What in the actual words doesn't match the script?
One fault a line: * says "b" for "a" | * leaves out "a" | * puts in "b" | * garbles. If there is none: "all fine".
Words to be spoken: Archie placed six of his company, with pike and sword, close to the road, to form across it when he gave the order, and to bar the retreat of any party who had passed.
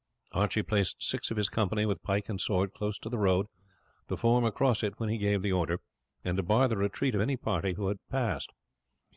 all fine